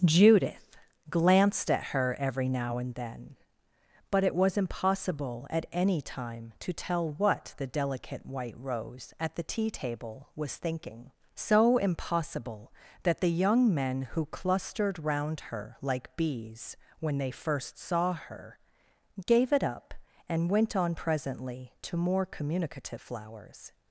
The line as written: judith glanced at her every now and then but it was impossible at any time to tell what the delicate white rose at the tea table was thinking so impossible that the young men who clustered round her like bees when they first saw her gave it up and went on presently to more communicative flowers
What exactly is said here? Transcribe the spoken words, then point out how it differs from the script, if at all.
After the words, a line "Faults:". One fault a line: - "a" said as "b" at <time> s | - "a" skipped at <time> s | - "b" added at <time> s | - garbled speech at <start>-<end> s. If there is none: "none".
judith glanced at her every now and then but it was impossible at any time to tell what the delicate white rose at the tea table was thinking so impossible that the young men who clustered round her like bees when they first saw her gave it up and went on presently to more communicative flowers
Faults:
none